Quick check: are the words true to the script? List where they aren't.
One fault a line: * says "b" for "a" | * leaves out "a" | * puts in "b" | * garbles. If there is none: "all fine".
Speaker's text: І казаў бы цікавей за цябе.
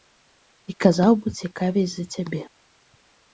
all fine